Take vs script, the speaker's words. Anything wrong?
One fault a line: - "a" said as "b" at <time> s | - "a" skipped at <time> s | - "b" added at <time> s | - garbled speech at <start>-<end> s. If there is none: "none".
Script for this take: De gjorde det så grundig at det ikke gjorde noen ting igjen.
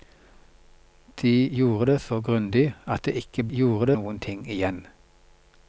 none